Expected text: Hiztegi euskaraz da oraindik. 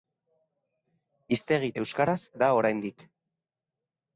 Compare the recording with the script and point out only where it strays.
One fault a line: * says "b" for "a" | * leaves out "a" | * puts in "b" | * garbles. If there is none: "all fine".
all fine